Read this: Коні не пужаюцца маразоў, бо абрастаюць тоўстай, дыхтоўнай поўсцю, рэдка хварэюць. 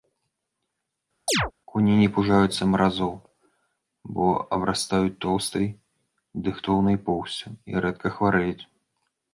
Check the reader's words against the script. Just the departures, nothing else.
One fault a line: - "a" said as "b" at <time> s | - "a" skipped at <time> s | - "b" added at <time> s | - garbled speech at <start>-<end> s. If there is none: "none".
- "і" added at 7.7 s